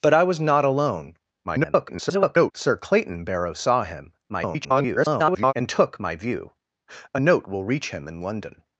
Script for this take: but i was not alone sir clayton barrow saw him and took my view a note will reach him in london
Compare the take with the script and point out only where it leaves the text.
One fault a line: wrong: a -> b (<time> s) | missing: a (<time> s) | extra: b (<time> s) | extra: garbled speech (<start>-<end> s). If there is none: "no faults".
extra: garbled speech (1.4-2.5 s)
extra: garbled speech (4.3-5.5 s)